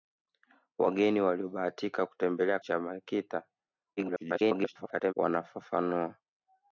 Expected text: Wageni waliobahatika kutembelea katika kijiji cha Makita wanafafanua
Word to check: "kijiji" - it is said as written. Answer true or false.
false